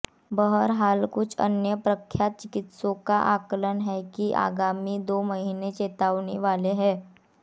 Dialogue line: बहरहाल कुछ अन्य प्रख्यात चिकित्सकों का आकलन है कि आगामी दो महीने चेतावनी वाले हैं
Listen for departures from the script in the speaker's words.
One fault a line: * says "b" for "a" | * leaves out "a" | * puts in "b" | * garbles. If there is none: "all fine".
all fine